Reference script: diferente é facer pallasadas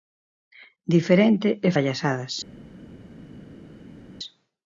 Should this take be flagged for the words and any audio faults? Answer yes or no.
yes